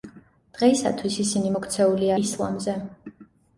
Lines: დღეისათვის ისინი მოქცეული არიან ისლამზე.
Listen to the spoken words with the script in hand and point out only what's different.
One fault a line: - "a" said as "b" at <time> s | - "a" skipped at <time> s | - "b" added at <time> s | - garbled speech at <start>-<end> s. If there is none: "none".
- "არიან" skipped at 2.1 s